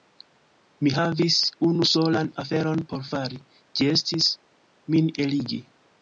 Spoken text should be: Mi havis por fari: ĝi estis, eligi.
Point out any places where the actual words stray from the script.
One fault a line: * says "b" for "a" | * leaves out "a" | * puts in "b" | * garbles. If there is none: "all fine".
* puts in "unu solan aferon"
* puts in "min"